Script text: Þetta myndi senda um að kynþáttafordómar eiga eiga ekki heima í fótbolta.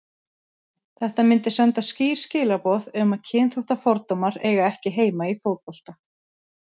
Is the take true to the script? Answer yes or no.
no